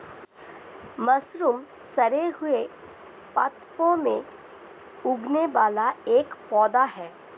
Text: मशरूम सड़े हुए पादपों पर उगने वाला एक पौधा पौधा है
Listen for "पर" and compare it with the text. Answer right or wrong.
wrong